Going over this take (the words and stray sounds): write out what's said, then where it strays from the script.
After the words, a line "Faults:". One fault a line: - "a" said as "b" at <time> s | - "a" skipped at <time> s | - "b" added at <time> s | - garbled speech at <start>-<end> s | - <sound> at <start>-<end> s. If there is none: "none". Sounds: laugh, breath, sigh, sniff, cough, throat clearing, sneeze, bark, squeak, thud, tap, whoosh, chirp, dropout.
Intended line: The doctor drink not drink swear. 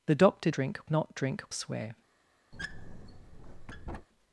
The doctor drink not drink swear.
Faults:
- squeak at 2.5-4.1 s